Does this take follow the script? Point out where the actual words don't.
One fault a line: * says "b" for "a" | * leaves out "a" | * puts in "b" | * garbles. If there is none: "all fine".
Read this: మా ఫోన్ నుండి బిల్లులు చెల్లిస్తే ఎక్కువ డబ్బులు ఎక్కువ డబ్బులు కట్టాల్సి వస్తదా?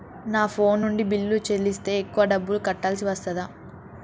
* says "నా" for "మా"
* leaves out "ఎక్కువ డబ్బులు"